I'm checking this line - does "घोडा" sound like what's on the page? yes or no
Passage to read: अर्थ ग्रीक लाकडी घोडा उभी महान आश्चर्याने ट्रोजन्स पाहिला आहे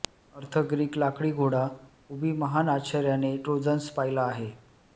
yes